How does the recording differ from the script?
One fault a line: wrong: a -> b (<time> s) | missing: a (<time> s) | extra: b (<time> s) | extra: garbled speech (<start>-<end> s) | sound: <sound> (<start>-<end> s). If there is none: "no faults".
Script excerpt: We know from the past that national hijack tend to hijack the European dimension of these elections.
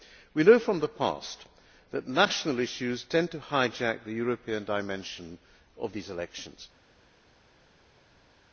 wrong: hijack -> issues (2.6 s)